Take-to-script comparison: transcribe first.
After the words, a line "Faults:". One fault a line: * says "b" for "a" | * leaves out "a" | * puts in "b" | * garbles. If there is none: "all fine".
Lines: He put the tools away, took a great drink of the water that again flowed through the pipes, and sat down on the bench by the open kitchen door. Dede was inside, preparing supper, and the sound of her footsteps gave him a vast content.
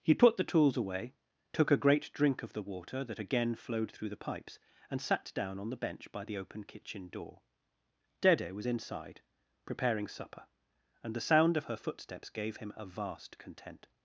He put the tools away, took a great drink of the water that again flowed through the pipes, and sat down on the bench by the open kitchen door. Dede was inside, preparing supper, and the sound of her footsteps gave him a vast content.
Faults:
all fine